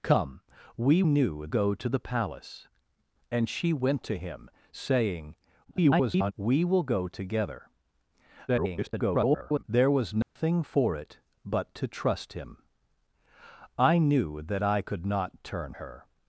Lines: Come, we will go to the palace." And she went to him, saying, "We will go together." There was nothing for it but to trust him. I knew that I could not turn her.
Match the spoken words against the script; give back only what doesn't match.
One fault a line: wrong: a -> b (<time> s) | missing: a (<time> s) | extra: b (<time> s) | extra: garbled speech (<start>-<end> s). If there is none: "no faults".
wrong: will -> knew (1.0 s)
extra: garbled speech (5.6-6.3 s)
extra: garbled speech (8.5-9.6 s)